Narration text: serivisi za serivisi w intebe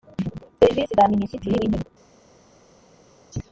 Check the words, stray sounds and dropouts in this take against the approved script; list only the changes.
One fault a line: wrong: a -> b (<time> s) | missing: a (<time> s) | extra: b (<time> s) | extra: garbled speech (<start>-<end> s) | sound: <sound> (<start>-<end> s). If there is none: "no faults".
wrong: serivisi -> minisitiri (1.1 s)